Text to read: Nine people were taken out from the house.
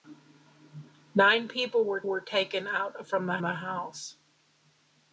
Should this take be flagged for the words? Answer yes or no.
yes